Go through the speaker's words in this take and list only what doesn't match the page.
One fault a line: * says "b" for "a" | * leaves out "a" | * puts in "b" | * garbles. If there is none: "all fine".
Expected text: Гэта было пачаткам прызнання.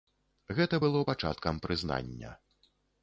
all fine